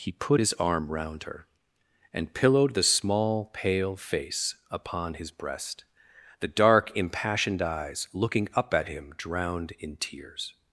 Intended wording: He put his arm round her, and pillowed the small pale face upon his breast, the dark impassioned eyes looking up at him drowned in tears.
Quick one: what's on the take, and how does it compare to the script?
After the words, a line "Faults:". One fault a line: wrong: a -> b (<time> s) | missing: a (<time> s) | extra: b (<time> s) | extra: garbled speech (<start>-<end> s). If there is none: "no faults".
He put his arm round her, and pillowed the small pale face upon his breast, the dark impassioned eyes looking up at him drowned in tears.
Faults:
no faults